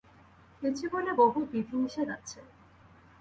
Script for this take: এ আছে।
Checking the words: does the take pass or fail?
fail